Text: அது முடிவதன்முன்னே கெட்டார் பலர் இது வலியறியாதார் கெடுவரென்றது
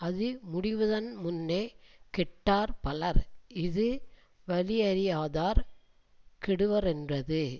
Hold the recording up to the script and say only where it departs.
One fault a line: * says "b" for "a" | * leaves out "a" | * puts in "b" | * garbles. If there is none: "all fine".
all fine